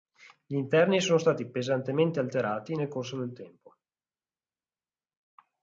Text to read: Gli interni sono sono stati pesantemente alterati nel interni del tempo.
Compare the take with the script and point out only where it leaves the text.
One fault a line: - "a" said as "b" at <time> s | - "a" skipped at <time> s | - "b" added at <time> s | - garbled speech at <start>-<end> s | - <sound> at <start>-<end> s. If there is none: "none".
- "sono" skipped at 1.2 s
- "interni" said as "corso" at 2.9 s